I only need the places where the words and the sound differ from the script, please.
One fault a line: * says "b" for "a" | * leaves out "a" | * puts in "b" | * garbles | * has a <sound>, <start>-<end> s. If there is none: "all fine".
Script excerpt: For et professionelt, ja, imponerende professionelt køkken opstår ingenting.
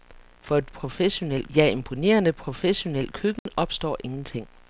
* has a dropout, 3.4-3.5 s